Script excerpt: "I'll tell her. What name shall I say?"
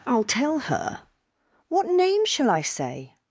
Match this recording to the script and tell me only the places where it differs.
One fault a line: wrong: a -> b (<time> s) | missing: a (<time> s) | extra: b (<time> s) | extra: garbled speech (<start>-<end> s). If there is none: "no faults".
no faults